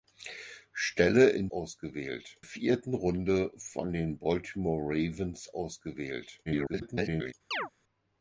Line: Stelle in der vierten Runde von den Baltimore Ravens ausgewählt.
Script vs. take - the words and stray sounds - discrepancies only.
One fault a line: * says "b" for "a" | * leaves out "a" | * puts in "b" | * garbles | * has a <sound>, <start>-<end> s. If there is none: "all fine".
* says "ausgewählt" for "der"
* garbles
* has a chirp, 7.5-7.7 s